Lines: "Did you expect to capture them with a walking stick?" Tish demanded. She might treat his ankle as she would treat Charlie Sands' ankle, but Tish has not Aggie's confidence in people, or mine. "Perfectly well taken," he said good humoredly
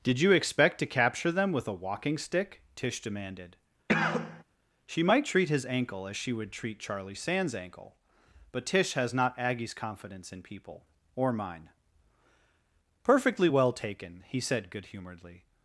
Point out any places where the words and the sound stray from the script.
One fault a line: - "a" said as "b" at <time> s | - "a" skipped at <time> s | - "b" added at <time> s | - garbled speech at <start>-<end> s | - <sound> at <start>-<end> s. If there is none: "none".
- cough at 3.9-4.4 s